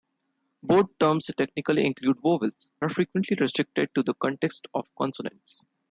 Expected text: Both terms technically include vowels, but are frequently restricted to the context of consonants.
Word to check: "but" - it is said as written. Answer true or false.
false